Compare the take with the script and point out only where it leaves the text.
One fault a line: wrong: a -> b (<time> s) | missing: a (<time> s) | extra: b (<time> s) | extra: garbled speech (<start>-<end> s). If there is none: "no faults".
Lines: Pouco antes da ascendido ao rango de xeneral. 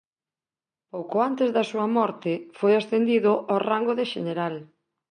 extra: súa morte foi (1.7 s)